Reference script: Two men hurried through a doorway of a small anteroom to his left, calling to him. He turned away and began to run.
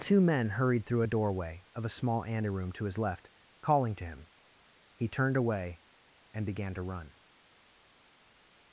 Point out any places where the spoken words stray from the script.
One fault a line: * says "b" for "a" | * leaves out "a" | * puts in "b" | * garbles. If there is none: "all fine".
all fine